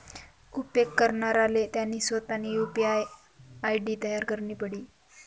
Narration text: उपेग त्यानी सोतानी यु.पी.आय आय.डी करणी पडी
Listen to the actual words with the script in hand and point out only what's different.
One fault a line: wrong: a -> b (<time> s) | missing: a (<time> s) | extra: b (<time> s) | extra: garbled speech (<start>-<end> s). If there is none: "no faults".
extra: करणाराले (1.0 s)
extra: तयार (4.0 s)